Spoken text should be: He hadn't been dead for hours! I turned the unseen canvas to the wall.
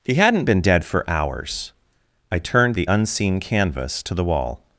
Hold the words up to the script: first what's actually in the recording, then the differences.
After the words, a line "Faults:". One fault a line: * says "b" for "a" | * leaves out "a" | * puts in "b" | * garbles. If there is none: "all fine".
He hadn't been dead for hours! I turned the unseen canvas to the wall.
Faults:
all fine